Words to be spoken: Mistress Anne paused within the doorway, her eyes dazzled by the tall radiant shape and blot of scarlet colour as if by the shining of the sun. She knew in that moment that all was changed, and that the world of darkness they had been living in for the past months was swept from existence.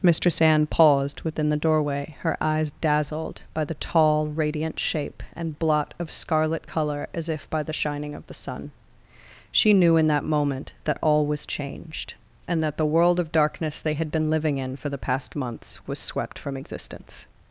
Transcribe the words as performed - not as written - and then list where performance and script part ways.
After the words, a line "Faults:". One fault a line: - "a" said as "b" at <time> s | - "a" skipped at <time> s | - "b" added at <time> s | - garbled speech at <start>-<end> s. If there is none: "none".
Mistress Anne paused within the doorway, her eyes dazzled by the tall radiant shape and blot of scarlet colour as if by the shining of the sun. She knew in that moment that all was changed, and that the world of darkness they had been living in for the past months was swept from existence.
Faults:
none